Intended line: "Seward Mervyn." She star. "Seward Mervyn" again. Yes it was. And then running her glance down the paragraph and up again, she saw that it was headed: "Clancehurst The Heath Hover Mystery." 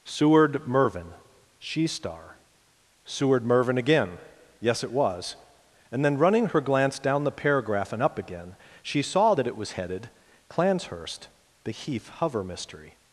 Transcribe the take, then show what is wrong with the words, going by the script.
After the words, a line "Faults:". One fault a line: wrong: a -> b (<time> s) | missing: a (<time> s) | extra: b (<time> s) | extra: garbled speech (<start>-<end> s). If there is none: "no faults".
"Seward Mervyn." She star. "Seward Mervyn" again. Yes it was. And then running her glance down the paragraph and up again, she saw that it was headed: "Clancehurst The Heath Hover Mystery."
Faults:
no faults